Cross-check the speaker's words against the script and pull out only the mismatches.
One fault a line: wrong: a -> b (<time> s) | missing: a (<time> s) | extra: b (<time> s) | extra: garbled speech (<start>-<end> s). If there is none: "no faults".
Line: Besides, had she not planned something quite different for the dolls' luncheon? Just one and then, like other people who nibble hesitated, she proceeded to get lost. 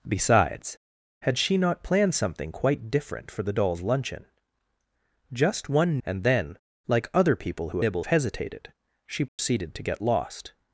no faults